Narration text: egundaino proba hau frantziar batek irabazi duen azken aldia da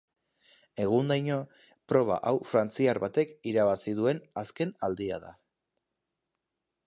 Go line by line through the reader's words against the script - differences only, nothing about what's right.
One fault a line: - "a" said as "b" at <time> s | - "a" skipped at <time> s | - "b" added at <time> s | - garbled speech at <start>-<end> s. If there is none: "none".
none